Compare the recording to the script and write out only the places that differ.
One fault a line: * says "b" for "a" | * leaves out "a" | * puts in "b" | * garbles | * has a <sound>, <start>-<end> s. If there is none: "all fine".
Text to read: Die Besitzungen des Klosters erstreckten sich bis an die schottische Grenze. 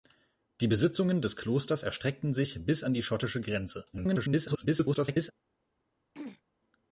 * garbles
* has a throat clearing, 6.1-6.4 s